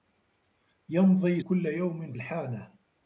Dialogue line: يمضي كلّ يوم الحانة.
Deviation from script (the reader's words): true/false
false